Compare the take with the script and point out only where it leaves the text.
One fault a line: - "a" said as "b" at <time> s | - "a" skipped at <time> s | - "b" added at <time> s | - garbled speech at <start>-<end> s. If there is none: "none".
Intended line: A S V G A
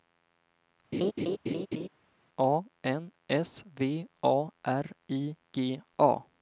- "N" added at 2.8 s
- "A R I" added at 4.2 s